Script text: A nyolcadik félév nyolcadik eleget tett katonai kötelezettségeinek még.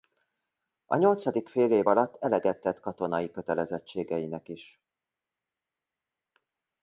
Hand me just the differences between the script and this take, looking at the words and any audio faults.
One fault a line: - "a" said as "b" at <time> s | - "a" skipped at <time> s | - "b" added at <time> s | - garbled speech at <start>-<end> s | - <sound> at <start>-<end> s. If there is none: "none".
- "nyolcadik" said as "alatt" at 1.9 s
- "még" said as "is" at 4.5 s